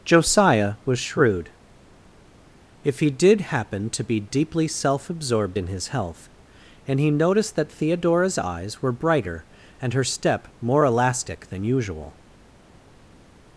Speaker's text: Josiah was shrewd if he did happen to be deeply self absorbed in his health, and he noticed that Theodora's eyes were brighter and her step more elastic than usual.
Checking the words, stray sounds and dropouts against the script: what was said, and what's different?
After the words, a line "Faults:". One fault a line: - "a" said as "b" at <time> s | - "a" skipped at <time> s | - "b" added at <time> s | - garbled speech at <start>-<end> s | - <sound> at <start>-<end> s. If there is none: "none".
Josiah was shrewd if he did happen to be deeply self absorbed in his health, and he noticed that Theodora's eyes were brighter and her step more elastic than usual.
Faults:
none